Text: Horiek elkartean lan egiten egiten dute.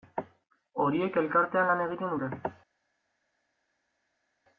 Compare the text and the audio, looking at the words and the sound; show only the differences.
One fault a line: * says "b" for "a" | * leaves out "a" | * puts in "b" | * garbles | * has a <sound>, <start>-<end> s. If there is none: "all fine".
* leaves out "egiten"